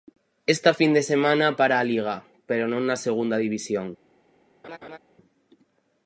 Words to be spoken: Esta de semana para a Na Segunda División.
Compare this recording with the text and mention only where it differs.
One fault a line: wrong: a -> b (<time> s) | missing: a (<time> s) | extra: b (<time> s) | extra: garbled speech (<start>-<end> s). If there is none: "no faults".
extra: fin (0.7 s)
extra: Liga pero non (1.8 s)